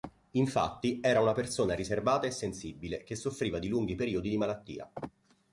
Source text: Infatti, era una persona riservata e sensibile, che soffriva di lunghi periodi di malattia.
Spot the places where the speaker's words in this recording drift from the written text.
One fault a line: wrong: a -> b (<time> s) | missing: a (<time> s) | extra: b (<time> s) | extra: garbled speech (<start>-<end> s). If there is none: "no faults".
no faults